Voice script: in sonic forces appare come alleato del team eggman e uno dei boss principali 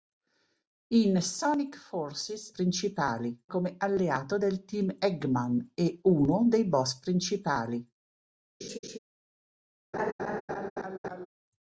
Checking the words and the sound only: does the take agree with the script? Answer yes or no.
no